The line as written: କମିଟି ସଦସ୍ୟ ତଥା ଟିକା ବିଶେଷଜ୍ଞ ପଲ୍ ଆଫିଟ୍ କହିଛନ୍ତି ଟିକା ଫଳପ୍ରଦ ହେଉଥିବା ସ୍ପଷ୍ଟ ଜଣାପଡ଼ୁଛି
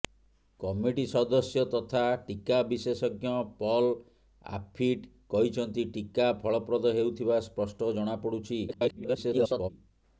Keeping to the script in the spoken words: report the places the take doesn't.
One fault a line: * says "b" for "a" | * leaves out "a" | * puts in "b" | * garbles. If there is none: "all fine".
* garbles